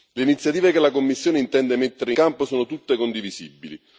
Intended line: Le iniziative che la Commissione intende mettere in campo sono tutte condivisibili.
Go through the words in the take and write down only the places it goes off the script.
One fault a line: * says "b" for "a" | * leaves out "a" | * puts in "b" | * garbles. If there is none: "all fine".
* leaves out "in"